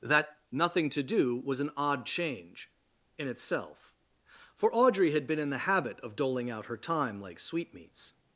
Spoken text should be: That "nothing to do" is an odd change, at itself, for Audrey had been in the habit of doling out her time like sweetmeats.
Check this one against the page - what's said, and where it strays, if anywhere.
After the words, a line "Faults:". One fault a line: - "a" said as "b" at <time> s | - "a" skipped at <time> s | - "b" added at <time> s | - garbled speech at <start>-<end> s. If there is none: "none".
That "nothing to do" was an odd change, in itself, for Audrey had been in the habit of doling out her time like sweetmeats.
Faults:
- "is" said as "was" at 1.4 s
- "at" said as "in" at 3.2 s